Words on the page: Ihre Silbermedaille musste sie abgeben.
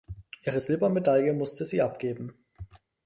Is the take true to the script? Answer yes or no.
yes